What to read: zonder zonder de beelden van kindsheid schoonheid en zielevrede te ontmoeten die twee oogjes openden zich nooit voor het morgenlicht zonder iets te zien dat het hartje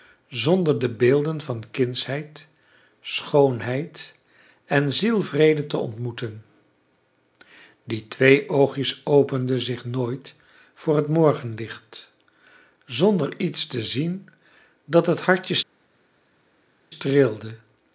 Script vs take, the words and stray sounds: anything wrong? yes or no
yes